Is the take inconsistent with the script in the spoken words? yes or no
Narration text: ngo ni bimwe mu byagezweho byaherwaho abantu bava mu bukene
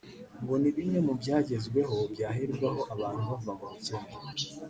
no